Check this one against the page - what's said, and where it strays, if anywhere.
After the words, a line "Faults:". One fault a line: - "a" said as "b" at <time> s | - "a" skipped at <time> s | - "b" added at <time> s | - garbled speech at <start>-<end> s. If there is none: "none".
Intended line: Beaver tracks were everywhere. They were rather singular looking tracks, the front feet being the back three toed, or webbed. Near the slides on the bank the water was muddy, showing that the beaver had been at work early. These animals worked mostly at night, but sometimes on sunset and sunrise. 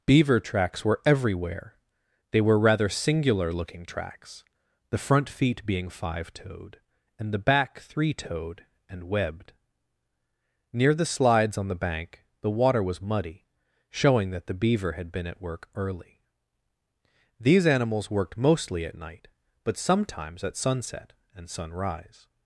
Beaver tracks were everywhere. They were rather singular looking tracks, the front feet being five toed, and the back three toed, and webbed. Near the slides on the bank the water was muddy, showing that the beaver had been at work early. These animals worked mostly at night, but sometimes at sunset and sunrise.
Faults:
- "five toed and" added at 5.9 s
- "or" said as "and" at 8.9 s
- "on" said as "at" at 20.4 s